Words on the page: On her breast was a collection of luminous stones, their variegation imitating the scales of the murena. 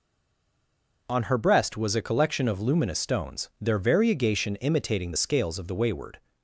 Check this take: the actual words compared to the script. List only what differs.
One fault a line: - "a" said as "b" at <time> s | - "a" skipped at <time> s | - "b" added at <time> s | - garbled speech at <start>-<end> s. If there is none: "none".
- "murena" said as "wayward" at 5.8 s